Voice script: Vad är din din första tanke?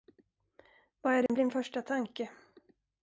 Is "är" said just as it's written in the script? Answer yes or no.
yes